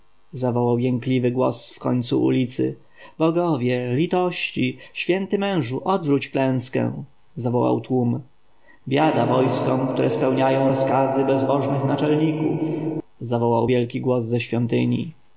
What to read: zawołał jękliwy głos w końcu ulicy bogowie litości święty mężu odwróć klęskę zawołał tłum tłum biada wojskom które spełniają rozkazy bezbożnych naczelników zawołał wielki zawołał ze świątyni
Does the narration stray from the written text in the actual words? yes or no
yes